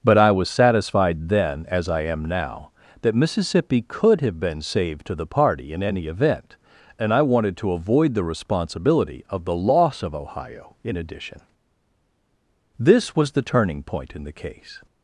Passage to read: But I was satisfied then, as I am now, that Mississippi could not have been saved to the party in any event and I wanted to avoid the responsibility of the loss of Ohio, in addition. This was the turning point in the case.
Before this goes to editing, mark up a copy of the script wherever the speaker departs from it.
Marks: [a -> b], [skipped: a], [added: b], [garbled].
But I was satisfied then, as I am now, that Mississippi could [skipped: not] have been saved to the party in any event and I wanted to avoid the responsibility of the loss of Ohio, in addition. This was the turning point in the case.